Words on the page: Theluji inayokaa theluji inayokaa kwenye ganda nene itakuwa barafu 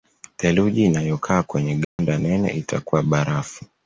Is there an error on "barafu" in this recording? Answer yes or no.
no